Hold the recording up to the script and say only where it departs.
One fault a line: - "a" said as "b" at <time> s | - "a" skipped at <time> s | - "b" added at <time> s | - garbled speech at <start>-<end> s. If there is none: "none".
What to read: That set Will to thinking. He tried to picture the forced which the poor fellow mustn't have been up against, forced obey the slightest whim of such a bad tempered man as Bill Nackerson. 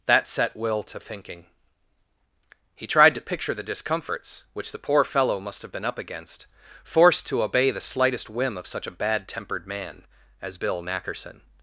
- "forced" said as "discomforts" at 3.6 s
- "mustn't" said as "must" at 5.4 s
- "to" added at 7.3 s